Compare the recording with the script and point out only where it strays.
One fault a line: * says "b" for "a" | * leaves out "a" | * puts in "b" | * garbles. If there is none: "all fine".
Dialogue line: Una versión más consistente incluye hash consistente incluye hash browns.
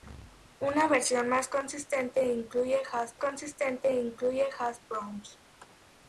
all fine